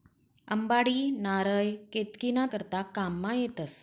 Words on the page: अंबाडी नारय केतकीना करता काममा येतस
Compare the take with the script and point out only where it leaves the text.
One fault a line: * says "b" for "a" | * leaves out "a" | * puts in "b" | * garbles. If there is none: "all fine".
all fine